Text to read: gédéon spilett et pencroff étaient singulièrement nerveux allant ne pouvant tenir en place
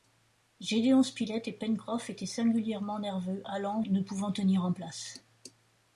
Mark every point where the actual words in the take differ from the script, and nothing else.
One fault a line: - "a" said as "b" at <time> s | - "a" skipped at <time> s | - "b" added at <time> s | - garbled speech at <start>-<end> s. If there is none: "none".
none